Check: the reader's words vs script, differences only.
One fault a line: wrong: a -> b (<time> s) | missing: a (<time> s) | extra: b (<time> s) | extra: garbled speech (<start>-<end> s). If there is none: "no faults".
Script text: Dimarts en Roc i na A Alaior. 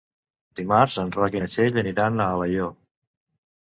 extra: Txell aniran (1.5 s)